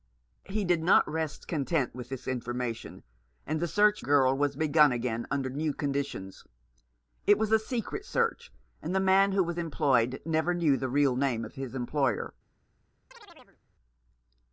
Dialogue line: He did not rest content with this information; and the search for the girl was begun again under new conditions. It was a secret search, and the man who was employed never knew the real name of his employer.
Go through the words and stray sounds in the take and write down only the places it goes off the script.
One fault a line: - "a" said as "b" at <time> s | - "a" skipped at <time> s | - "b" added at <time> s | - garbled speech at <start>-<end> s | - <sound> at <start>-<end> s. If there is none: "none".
- "for the" skipped at 4.0 s
- chirp at 13.1-13.6 s